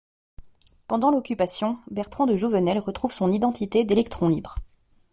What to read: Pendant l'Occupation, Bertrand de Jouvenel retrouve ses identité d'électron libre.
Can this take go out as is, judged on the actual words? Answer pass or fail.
fail